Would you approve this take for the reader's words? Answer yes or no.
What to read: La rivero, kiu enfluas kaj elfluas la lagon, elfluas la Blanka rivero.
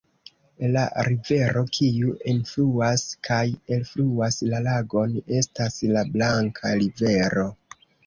no